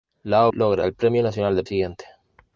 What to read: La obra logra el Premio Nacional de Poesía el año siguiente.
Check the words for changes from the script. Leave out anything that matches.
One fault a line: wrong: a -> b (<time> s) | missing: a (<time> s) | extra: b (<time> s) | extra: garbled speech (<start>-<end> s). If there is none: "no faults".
missing: obra (0.5 s)
missing: Poesía el año (1.6 s)